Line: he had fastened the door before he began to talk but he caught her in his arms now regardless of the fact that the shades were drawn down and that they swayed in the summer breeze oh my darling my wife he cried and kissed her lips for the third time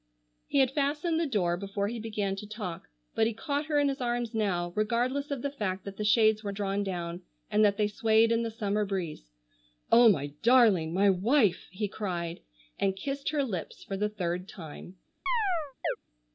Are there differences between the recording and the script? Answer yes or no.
no